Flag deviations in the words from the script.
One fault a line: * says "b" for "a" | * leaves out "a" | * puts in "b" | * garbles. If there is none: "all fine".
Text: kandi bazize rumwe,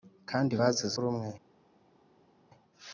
all fine